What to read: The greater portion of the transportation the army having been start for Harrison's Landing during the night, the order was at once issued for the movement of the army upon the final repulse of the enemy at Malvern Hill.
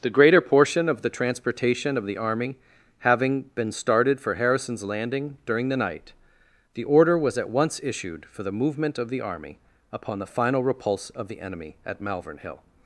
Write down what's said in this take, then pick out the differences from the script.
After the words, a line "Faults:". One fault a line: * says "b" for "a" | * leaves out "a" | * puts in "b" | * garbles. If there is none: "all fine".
The greater portion of the transportation of the army having been started for Harrison's Landing during the night, the order was at once issued for the movement of the army upon the final repulse of the enemy at Malvern Hill.
Faults:
* puts in "of"
* says "started" for "start"